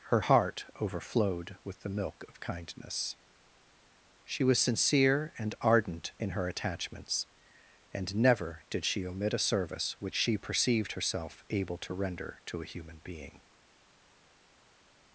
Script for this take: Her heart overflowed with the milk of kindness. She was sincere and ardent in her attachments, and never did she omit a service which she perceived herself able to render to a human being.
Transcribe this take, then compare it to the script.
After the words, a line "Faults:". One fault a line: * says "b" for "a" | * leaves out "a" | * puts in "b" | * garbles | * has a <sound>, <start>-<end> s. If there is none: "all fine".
Her heart overflowed with the milk of kindness. She was sincere and ardent in her attachments, and never did she omit a service which she perceived herself able to render to a human being.
Faults:
all fine